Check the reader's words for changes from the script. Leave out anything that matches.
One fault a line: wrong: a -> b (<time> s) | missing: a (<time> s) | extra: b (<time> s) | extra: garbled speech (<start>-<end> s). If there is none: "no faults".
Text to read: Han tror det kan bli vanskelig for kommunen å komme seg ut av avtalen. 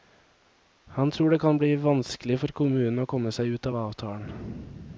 no faults